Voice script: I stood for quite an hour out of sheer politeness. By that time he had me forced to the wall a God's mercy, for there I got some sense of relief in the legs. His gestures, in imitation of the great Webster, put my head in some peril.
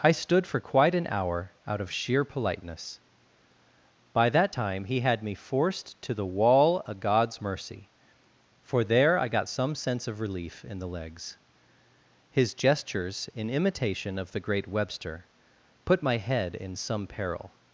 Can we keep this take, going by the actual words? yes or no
no